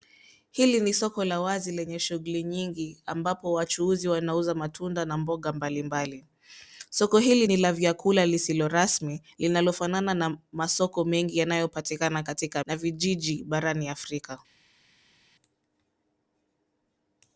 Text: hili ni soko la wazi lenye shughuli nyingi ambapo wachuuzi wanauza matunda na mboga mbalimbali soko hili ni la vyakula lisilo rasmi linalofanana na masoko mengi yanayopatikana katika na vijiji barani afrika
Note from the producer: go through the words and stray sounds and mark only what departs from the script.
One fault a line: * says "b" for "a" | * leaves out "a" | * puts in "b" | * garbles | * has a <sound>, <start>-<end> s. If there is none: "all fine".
all fine